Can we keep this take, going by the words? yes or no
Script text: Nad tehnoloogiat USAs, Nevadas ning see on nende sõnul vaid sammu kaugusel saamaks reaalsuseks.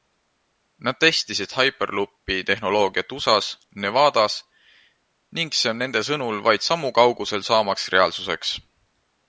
no